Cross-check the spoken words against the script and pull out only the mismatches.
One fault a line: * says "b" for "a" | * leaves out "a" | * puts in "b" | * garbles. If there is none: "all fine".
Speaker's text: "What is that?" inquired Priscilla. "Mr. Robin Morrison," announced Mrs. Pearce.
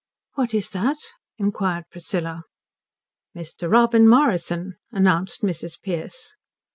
all fine